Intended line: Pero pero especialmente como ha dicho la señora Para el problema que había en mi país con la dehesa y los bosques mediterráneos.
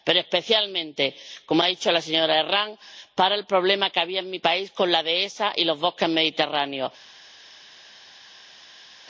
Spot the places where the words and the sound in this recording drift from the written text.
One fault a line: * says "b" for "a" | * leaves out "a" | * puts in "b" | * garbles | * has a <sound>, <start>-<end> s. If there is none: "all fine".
* leaves out "pero"
* puts in "Herranz"